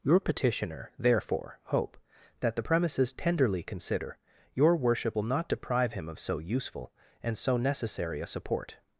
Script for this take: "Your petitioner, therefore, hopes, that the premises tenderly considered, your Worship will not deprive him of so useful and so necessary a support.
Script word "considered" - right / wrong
wrong